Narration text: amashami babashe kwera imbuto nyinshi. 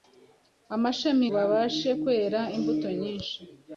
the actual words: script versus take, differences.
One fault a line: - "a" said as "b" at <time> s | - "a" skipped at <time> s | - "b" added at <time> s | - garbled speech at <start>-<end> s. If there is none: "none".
none